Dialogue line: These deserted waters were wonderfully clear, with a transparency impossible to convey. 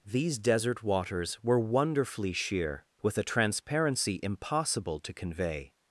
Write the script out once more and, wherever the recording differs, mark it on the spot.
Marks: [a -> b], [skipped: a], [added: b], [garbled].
These [deserted -> desert] waters were wonderfully [clear, -> sheer] with a transparency impossible to convey.